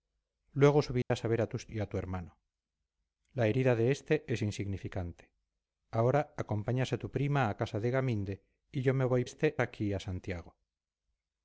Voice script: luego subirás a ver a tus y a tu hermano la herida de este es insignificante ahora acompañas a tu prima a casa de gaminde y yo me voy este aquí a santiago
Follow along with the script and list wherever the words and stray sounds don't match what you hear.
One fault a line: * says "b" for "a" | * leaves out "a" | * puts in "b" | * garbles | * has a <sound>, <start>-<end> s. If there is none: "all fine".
* has a dropout, 1.0-1.1 s